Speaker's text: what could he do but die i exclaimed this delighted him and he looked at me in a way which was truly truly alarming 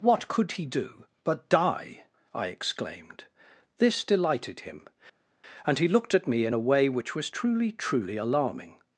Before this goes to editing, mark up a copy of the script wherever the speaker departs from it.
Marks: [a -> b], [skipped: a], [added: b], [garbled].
what could he do but die i exclaimed this delighted him and he looked at me in a way which was truly truly alarming